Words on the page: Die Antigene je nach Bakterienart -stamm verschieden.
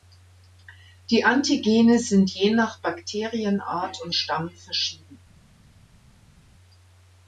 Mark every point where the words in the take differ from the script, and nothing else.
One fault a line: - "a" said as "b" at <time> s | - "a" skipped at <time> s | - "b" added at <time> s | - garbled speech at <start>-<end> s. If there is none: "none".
- "sind" added at 2.0 s
- "und" added at 4.0 s